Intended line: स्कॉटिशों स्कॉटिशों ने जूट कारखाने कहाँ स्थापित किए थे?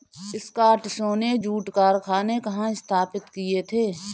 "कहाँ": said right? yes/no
yes